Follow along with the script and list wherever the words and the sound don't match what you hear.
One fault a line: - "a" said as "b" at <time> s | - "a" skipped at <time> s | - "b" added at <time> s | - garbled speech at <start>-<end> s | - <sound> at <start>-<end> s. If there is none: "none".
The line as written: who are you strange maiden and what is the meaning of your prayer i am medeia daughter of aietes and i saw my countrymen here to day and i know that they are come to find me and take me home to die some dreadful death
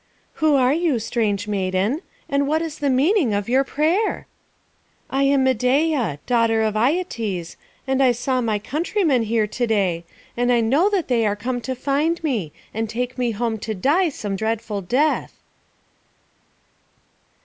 none